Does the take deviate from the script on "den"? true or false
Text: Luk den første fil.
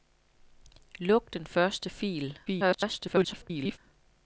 false